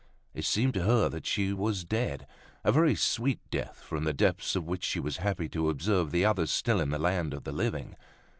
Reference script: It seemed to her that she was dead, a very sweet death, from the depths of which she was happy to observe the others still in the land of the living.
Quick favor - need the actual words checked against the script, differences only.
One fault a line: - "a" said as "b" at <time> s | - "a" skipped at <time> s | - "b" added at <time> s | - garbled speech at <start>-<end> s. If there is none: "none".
none